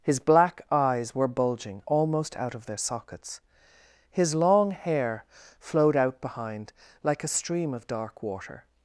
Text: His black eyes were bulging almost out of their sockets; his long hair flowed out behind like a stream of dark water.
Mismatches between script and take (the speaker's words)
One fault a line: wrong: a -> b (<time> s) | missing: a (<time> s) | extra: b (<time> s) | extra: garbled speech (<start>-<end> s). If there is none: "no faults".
no faults